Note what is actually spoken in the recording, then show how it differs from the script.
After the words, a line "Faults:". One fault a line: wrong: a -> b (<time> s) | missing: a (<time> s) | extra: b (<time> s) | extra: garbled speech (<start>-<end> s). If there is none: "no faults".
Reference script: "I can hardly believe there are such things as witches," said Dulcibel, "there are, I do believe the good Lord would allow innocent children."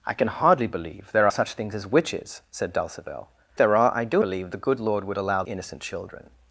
"I can hardly believe there are such things as witches," said Dulcibel, "there are, I do believe the good Lord would allow innocent children."
Faults:
no faults